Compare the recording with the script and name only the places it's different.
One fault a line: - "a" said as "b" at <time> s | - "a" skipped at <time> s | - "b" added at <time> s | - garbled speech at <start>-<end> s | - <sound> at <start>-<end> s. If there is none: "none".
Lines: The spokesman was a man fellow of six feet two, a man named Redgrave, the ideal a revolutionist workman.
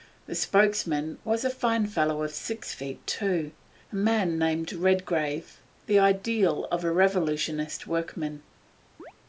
- "man" said as "fine" at 1.5 s
- "of" added at 6.7 s
- chirp at 9.0-9.1 s